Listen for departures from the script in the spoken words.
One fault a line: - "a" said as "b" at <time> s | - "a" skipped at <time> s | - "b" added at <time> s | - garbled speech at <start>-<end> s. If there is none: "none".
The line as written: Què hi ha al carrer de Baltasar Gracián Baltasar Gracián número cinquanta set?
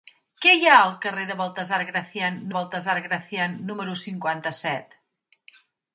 none